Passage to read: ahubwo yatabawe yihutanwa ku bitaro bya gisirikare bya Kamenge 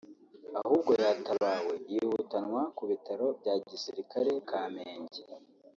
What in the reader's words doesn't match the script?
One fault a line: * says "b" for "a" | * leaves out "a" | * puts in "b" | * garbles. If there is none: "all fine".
* leaves out "bya"